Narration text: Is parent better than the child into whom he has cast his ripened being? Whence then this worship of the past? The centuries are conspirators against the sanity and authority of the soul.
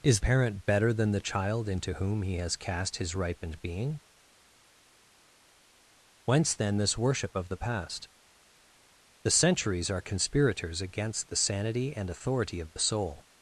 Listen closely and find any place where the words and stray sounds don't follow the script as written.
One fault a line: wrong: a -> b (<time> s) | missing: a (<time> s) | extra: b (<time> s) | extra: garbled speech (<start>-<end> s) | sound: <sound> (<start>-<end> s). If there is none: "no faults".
no faults